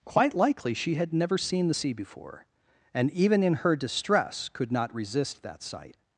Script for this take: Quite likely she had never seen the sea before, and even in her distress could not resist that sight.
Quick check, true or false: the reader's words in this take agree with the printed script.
true